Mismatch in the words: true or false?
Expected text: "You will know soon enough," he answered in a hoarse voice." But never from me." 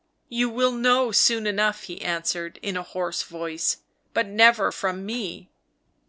false